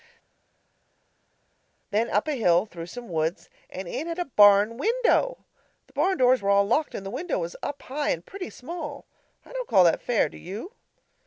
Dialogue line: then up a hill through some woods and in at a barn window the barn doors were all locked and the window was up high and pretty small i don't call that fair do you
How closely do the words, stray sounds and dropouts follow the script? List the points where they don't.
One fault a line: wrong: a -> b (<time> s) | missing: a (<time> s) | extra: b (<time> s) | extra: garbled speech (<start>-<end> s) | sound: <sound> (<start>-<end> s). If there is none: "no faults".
no faults